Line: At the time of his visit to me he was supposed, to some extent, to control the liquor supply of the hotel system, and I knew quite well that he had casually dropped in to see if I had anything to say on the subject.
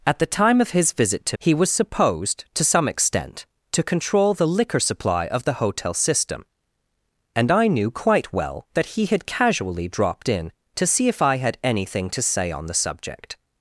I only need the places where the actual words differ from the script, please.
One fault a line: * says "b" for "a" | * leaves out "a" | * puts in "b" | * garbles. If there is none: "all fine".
* leaves out "me"